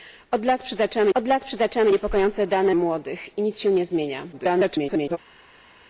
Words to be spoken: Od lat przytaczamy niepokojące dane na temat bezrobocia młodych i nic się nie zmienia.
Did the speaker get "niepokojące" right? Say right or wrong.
wrong